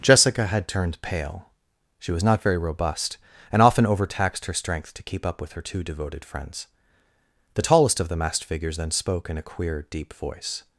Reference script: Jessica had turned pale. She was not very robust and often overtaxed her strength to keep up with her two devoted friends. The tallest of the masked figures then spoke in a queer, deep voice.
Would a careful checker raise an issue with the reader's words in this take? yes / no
no